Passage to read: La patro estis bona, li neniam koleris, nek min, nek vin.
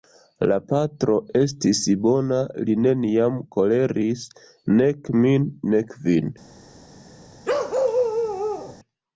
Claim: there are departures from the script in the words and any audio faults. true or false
true